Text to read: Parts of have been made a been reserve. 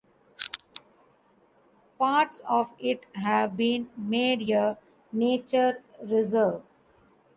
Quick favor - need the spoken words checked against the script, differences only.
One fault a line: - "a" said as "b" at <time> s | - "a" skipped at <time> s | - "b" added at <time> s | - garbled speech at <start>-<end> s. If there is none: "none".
- "it" added at 2.8 s
- "been" said as "nature" at 5.1 s